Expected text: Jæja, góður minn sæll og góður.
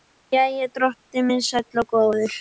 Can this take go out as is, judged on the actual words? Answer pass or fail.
fail